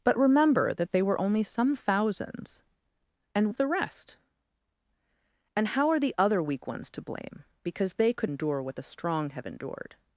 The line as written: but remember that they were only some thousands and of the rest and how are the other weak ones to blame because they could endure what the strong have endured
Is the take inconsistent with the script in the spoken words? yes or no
no